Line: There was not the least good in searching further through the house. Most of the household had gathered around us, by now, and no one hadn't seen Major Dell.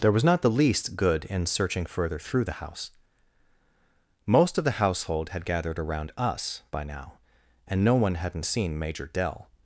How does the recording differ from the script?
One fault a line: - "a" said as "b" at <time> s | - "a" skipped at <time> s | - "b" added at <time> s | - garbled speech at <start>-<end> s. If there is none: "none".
none